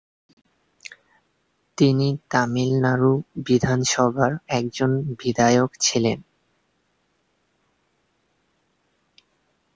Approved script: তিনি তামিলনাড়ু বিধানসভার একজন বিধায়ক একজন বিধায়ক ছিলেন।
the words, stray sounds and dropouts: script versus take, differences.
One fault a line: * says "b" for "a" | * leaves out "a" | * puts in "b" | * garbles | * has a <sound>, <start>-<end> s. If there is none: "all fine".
* leaves out "একজন বিধায়ক"